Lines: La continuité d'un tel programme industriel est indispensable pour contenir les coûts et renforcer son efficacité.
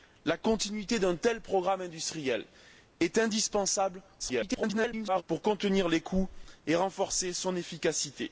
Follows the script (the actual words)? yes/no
no